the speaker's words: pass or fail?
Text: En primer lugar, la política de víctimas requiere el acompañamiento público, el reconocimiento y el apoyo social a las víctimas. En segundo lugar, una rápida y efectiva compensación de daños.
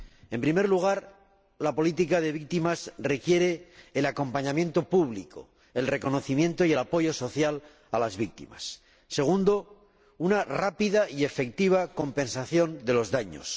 fail